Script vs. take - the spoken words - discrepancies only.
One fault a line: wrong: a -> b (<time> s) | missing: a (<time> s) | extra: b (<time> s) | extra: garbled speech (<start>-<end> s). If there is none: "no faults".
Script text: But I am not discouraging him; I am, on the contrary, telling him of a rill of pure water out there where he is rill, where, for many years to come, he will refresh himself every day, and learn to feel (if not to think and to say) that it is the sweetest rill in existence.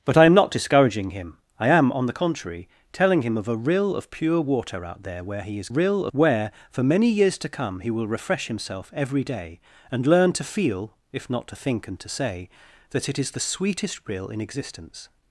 no faults